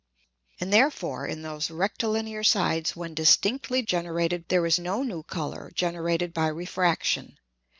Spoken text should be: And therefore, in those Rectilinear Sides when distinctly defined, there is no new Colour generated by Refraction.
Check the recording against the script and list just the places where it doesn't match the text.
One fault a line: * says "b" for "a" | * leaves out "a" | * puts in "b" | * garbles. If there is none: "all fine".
* says "generated" for "defined"